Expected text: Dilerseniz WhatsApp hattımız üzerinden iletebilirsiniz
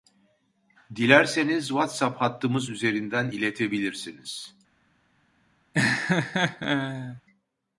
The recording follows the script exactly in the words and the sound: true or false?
false